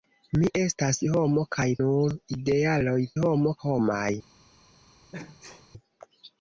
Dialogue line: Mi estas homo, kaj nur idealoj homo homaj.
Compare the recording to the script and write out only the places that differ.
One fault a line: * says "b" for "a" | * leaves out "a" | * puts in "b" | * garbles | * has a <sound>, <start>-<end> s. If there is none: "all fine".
* has a sneeze, 5.1-5.7 s